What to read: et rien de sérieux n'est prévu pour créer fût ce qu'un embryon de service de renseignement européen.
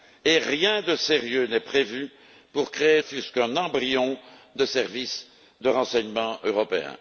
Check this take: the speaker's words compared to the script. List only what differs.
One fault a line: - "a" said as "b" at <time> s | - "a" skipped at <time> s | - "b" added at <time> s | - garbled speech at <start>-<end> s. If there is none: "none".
none